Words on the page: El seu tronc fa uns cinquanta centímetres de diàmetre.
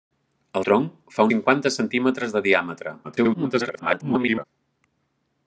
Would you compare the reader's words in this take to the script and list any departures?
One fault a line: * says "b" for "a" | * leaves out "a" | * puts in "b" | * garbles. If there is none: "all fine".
* leaves out "seu"
* leaves out "uns"
* garbles